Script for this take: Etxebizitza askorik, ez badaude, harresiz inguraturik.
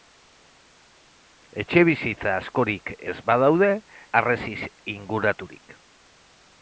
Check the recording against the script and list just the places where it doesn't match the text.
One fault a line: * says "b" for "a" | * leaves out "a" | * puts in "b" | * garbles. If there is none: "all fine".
all fine